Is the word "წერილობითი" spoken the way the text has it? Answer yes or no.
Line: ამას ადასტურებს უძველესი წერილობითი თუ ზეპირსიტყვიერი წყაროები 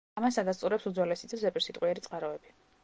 no